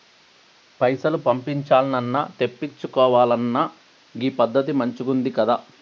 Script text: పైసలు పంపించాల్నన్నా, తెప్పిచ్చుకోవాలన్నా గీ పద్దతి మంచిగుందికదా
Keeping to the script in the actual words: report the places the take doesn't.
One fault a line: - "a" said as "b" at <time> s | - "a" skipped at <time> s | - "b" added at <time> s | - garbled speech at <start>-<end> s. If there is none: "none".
none